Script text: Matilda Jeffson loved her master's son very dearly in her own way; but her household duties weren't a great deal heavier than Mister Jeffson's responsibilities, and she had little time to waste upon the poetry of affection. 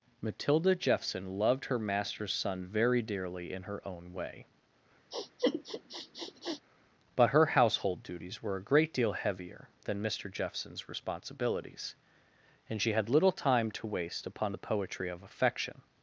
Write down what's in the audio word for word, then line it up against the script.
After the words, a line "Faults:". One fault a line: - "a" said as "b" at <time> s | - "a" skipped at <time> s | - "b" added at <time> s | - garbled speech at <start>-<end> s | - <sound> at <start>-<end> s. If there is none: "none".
Matilda Jeffson loved her master's son very dearly in her own way; but her household duties were a great deal heavier than Mister Jeffson's responsibilities, and she had little time to waste upon the poetry of affection.
Faults:
- sniff at 5.1-6.6 s
- "weren't" said as "were" at 8.4 s